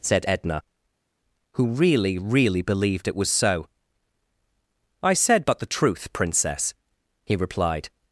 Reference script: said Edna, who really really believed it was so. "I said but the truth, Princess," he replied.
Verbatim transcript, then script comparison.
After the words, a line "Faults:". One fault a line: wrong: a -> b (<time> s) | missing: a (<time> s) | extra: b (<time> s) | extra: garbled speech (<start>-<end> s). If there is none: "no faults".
said Edna, who really really believed it was so. "I said but the truth, Princess," he replied.
Faults:
no faults